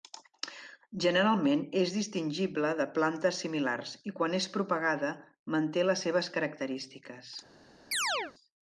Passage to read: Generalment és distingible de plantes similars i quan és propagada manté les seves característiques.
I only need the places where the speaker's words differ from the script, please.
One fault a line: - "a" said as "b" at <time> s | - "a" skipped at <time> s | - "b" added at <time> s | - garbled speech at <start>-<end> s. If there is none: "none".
none